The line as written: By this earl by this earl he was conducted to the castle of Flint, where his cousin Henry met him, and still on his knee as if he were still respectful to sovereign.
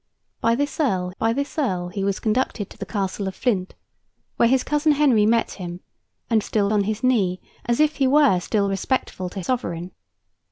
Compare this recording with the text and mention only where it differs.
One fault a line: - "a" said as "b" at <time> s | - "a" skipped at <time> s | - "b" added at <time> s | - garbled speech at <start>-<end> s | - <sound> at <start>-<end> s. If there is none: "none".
none